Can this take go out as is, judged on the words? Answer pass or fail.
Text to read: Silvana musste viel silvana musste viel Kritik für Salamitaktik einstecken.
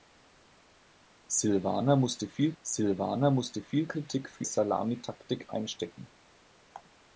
pass